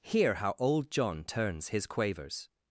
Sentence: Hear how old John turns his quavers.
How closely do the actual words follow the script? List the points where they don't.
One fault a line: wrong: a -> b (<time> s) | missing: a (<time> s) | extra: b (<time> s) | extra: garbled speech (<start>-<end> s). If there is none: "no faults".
no faults